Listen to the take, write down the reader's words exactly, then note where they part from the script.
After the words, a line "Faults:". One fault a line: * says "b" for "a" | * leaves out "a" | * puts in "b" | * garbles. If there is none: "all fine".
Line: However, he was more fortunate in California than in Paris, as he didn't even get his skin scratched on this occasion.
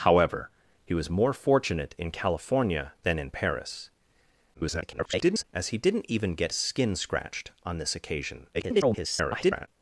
However, he was more fortunate in California than in Paris, [garbled] as he didn't even get skin scratched on this occasion. [garbled]
Faults:
* garbles
* leaves out "his"
* garbles